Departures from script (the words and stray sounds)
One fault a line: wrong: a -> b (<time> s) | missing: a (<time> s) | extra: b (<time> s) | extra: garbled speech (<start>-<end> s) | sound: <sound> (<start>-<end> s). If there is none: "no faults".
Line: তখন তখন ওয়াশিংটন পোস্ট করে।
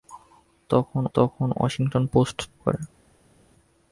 no faults